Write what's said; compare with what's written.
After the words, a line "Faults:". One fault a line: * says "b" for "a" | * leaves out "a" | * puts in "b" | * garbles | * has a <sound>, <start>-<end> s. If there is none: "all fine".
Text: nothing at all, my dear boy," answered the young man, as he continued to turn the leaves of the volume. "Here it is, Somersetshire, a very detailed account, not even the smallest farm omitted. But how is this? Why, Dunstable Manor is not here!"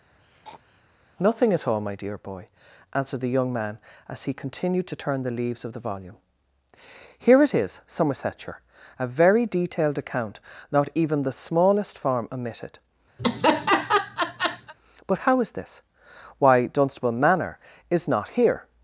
nothing at all, my dear boy," answered the young man, as he continued to turn the leaves of the volume. "Here it is, Somersetshire, a very detailed account, not even the smallest farm omitted. But how is this? Why, Dunstable Manor is not here!"
Faults:
* has a throat clearing, 0.2-0.8 s
* has a laugh, 13.2-14.7 s